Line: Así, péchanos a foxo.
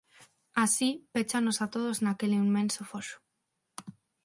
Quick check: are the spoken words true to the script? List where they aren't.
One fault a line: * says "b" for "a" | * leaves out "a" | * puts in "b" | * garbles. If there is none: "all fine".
* puts in "todos naquel inmenso"